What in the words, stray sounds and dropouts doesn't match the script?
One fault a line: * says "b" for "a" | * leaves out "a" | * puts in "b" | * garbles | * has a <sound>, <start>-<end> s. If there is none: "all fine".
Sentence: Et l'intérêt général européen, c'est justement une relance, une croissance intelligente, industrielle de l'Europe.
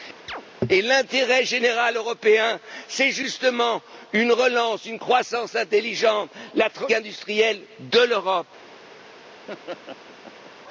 * has a chirp, 0.3-0.4 s
* has a laugh, 9.5-10.5 s